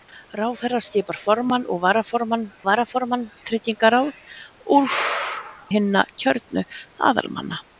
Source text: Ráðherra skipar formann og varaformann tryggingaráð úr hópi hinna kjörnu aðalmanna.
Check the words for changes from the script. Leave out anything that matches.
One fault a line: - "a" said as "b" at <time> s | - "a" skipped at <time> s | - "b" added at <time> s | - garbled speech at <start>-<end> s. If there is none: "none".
- "varaformann" added at 2.7 s
- "hópi" skipped at 4.9 s